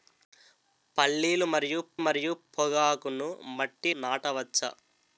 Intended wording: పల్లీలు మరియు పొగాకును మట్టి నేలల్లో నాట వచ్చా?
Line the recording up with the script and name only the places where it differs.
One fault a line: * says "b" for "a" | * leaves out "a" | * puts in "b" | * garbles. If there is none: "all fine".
* puts in "మరియు"
* leaves out "నేలల్లో"